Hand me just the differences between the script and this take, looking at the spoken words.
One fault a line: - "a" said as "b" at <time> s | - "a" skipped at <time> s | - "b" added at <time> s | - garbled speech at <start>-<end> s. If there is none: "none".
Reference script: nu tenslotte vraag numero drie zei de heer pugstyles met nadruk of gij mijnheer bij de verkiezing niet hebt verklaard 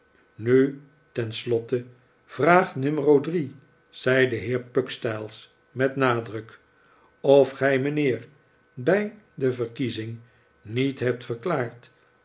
none